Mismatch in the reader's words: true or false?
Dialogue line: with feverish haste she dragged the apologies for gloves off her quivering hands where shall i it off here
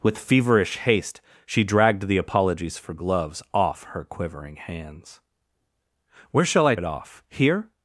false